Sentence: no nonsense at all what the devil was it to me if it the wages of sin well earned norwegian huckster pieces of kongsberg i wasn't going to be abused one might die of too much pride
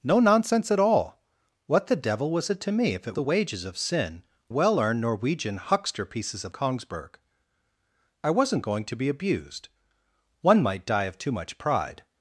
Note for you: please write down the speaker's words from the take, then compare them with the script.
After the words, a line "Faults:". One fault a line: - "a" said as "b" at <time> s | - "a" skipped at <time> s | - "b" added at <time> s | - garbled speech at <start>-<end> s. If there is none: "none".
no nonsense at all what the devil was it to me if it the wages of sin well earned norwegian huckster pieces of kongsberg i wasn't going to be abused one might die of too much pride
Faults:
none